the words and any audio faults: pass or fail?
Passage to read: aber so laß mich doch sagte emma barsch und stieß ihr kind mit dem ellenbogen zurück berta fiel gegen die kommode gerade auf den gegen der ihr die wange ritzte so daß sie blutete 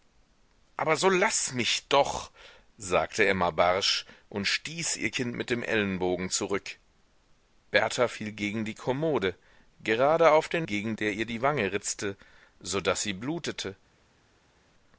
pass